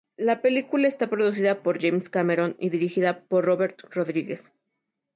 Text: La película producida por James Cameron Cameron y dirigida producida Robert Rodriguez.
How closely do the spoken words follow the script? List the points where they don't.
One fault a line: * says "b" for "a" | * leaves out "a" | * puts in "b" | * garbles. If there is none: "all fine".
* puts in "está"
* leaves out "Cameron"
* says "por" for "producida"